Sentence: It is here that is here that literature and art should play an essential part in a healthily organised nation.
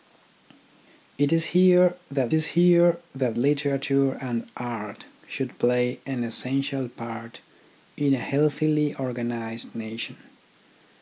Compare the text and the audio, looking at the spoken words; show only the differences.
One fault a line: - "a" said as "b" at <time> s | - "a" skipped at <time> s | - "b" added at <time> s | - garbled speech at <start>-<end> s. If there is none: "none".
none